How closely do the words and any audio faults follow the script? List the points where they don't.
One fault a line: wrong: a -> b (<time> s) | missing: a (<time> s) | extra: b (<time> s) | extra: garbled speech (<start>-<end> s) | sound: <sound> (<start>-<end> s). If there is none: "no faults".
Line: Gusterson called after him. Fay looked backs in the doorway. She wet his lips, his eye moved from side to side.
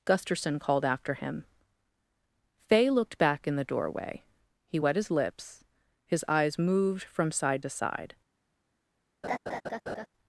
wrong: backs -> back (3.2 s)
wrong: She -> He (4.7 s)
wrong: eye -> eyes (6.3 s)
sound: laugh (9.2-10.1 s)